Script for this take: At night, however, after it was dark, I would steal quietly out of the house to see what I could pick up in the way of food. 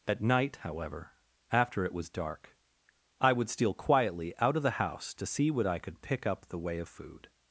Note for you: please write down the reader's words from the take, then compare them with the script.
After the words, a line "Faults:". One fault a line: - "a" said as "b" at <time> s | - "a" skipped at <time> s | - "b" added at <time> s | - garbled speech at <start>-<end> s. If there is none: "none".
At night, however, after it was dark, I would steal quietly out of the house to see what I could pick up the way of food.
Faults:
- "in" skipped at 6.5 s